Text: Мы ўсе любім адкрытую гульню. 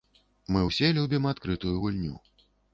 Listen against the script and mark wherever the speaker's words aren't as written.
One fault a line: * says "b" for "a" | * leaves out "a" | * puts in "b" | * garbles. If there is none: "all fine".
all fine